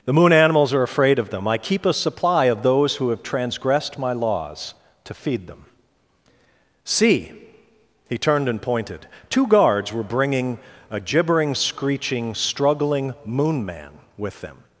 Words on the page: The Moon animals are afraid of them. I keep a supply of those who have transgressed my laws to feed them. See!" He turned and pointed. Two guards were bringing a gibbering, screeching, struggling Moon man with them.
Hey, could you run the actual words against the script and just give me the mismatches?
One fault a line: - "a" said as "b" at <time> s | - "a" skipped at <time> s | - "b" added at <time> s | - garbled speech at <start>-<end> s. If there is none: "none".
none